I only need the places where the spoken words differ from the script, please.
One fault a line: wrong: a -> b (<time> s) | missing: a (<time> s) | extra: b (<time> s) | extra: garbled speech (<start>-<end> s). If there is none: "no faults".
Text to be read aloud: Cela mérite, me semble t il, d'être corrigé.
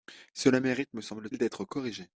missing: t (1.3 s)